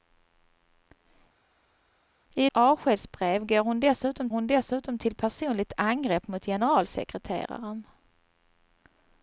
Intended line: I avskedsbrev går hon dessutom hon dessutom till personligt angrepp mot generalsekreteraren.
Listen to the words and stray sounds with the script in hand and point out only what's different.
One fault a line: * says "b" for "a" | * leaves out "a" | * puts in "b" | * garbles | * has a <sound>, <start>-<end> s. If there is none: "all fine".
all fine